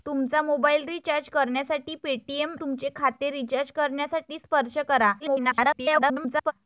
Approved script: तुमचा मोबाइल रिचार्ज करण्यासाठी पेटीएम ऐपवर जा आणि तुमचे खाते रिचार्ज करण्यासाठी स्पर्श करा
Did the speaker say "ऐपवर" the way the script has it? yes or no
no